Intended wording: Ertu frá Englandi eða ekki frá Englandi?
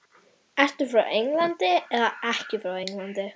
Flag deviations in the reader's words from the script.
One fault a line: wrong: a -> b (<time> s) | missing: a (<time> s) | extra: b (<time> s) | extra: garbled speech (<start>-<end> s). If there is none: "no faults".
no faults